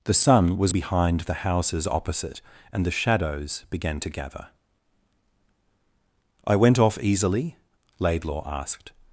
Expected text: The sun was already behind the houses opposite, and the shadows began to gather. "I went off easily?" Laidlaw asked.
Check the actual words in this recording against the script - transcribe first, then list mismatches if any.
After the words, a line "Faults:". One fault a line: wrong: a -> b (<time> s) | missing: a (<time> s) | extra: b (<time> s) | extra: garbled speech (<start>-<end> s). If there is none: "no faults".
The sun was behind the houses opposite, and the shadows began to gather. "I went off easily?" Laidlaw asked.
Faults:
missing: already (0.7 s)